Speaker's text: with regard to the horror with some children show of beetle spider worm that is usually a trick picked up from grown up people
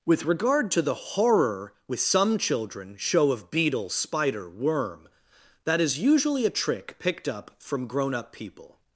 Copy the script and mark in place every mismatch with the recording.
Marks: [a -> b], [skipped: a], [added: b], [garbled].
with regard to the horror with some children show of beetle spider worm that is usually a trick picked up from grown up people